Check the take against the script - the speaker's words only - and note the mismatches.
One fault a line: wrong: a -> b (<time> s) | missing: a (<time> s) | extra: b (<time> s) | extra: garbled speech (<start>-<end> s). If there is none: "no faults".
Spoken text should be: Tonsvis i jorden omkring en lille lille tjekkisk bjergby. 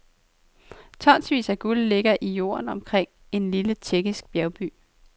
extra: af guld ligger (1.5 s)
missing: lille (3.7 s)